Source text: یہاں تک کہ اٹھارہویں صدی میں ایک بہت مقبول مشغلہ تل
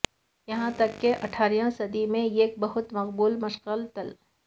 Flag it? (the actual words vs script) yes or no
no